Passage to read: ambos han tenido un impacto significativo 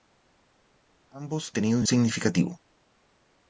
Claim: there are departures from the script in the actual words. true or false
true